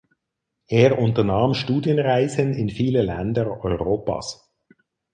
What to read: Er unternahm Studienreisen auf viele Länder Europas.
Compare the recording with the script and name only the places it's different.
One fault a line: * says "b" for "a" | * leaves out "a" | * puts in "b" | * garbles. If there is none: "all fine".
* says "in" for "auf"